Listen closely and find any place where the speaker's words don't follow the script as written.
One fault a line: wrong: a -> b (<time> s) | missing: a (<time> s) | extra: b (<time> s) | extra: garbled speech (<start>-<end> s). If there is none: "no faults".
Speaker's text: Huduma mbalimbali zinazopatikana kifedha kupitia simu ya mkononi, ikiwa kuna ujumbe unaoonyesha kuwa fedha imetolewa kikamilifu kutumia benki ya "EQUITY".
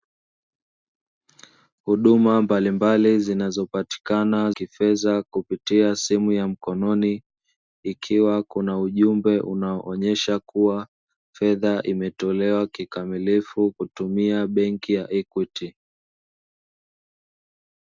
no faults